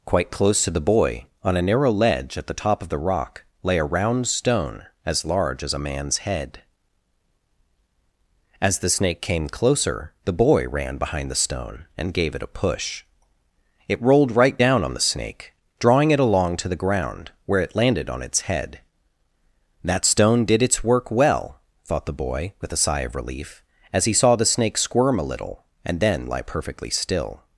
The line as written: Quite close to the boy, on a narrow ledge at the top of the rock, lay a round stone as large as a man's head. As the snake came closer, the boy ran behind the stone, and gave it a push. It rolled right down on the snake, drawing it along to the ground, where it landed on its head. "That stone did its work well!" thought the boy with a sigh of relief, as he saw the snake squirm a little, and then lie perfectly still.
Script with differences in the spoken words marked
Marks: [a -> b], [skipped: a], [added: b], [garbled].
Quite close to the boy, on a narrow ledge at the top of the rock, lay a round stone as large as a man's head. As the snake came closer, the boy ran behind the stone, and gave it a push. It rolled right down on the snake, drawing it along to the ground, where it landed on its head. "That stone did its work well!" thought the boy with a sigh of relief, as he saw the snake squirm a little, and then lie perfectly still.